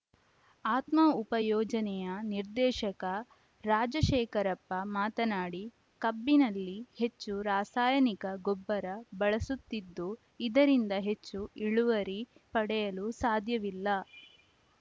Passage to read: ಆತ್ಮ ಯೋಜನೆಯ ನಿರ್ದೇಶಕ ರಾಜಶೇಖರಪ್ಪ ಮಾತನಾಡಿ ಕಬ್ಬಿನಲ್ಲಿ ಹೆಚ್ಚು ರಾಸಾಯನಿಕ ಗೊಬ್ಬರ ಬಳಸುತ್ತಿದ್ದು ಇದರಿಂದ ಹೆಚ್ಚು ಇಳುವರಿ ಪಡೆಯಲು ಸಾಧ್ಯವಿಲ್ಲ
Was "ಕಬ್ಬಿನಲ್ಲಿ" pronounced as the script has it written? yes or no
yes